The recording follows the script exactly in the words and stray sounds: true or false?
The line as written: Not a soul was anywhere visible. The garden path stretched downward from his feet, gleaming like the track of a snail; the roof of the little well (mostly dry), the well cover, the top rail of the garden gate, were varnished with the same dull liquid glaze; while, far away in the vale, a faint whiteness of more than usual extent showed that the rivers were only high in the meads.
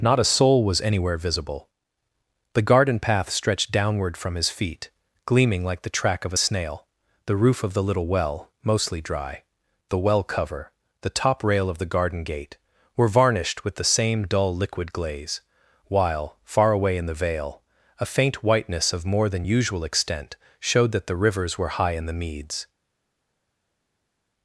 false